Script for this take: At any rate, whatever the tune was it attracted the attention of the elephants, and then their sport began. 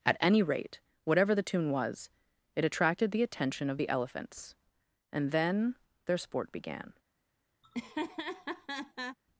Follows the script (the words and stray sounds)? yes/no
no